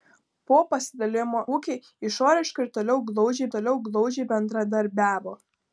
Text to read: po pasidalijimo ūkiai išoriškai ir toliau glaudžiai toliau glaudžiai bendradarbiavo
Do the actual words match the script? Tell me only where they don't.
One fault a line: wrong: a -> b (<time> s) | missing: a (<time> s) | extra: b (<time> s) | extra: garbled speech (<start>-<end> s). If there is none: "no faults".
no faults